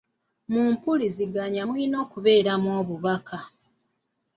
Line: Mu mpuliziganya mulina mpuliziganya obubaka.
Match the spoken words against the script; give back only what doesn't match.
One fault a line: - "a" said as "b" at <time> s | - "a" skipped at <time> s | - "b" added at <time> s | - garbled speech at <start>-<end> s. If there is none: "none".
- "mpuliziganya" said as "okubeeramu" at 2.0 s